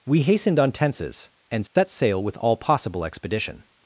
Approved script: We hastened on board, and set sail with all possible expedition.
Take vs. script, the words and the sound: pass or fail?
fail